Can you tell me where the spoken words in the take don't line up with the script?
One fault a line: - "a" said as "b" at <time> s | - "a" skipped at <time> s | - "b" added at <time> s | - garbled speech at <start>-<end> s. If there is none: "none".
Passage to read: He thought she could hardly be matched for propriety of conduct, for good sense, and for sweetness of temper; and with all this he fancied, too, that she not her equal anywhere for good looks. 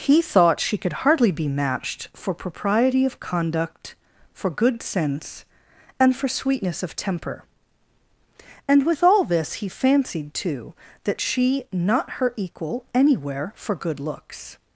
none